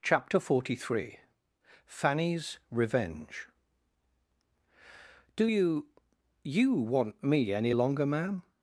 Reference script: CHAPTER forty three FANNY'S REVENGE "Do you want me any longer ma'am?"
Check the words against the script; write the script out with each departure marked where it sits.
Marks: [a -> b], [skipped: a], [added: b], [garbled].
CHAPTER forty three FANNY'S REVENGE "Do you [added: you] want me any longer ma'am?"